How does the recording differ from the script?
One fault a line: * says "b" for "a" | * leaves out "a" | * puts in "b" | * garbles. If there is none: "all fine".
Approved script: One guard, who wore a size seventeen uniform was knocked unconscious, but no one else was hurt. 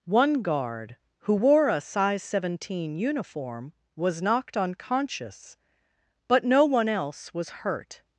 all fine